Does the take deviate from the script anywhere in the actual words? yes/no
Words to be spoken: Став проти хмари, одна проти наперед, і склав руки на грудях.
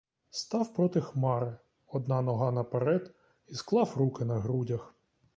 yes